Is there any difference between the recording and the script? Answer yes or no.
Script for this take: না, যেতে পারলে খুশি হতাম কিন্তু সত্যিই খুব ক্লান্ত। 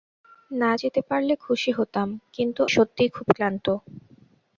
no